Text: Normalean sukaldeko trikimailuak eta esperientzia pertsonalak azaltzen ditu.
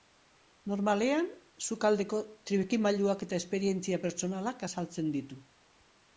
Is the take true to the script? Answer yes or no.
yes